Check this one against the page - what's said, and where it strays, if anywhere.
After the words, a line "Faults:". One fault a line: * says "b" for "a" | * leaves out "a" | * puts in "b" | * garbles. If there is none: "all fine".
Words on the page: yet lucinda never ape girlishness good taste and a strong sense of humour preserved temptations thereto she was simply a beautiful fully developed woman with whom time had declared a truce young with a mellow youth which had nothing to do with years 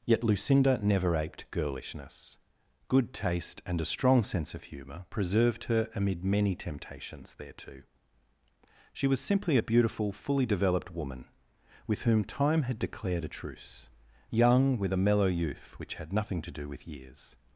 yet lucinda never aped girlishness good taste and a strong sense of humour preserved her amid many temptations thereto she was simply a beautiful fully developed woman with whom time had declared a truce young with a mellow youth which had nothing to do with years
Faults:
* says "aped" for "ape"
* puts in "her amid many"